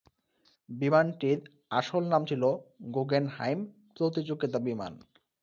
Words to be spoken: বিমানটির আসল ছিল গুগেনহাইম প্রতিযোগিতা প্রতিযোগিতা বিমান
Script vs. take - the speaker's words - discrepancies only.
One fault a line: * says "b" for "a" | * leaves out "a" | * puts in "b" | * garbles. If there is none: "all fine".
* puts in "নাম"
* leaves out "প্রতিযোগিতা"